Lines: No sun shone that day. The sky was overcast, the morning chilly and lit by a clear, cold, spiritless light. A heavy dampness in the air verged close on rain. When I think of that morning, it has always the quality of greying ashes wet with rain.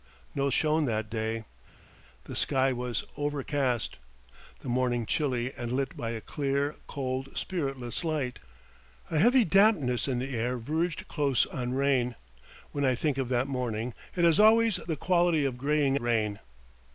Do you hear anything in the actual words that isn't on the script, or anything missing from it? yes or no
yes